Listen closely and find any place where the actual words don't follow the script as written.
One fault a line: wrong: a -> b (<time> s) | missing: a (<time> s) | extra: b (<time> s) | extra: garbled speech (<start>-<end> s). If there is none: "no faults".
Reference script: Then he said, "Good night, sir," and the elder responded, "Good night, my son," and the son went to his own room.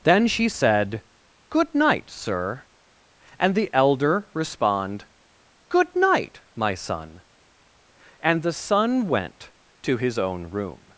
wrong: he -> she (0.3 s)
wrong: responded -> respond (4.3 s)